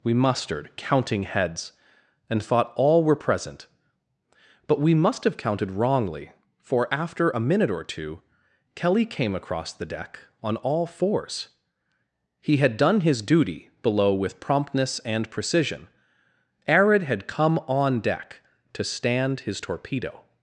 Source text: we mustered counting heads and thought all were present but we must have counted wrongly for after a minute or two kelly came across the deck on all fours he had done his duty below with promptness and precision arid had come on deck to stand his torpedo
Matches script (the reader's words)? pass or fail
pass